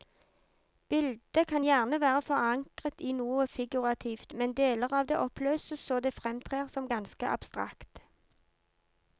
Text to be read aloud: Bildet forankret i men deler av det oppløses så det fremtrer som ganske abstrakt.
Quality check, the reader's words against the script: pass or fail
fail